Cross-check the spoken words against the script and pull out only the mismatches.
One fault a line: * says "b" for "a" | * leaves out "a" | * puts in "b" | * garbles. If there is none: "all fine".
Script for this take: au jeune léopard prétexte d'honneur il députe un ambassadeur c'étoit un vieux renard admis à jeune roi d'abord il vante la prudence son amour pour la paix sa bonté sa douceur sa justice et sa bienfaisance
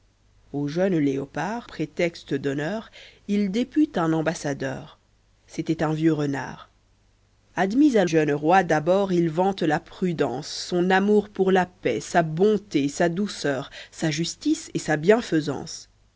all fine